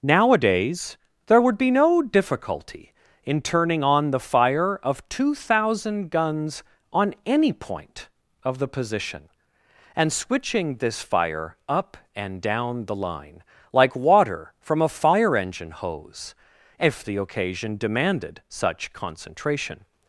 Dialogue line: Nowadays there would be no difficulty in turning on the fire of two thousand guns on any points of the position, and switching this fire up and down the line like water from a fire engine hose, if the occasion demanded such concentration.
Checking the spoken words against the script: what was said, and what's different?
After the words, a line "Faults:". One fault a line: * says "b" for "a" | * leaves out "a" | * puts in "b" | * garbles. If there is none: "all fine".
Nowadays there would be no difficulty in turning on the fire of two thousand guns on any point of the position, and switching this fire up and down the line like water from a fire engine hose, if the occasion demanded such concentration.
Faults:
* says "point" for "points"